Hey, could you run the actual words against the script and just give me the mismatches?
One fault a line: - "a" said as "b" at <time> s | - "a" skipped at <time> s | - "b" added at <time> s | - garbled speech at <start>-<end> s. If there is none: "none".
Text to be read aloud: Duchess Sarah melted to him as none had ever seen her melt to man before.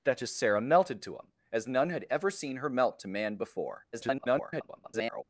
- garbled speech at 3.9-5.2 s